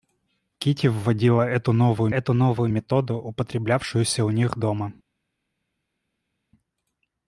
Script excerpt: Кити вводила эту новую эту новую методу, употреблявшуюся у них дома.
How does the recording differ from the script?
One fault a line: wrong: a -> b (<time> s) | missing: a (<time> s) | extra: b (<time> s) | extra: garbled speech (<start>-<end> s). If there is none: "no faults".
no faults